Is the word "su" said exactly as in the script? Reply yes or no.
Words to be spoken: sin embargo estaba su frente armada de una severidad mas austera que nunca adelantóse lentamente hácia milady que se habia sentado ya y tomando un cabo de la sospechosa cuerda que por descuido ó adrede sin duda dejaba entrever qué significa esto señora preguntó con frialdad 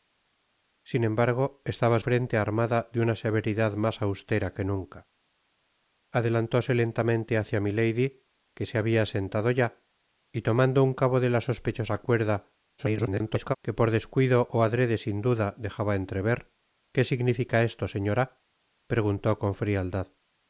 no